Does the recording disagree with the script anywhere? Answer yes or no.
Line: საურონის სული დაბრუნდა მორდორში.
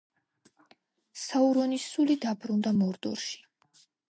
no